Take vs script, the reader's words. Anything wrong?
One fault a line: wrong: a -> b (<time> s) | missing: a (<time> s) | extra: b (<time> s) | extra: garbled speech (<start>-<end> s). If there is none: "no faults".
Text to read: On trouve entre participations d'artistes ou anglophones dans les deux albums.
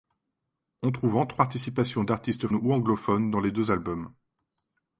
no faults